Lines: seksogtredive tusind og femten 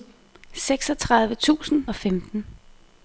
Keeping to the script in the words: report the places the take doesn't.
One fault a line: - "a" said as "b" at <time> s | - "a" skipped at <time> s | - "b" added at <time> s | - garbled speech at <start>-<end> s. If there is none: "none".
none